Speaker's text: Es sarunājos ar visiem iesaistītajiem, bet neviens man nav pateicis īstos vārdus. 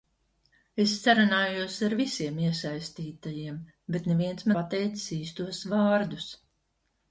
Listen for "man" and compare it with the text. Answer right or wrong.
wrong